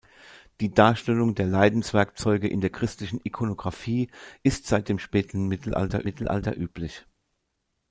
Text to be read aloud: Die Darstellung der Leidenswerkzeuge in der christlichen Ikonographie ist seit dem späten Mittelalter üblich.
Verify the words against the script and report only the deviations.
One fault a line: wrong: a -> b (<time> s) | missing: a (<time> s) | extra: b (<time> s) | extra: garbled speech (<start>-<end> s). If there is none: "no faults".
extra: Mittelalter (6.0 s)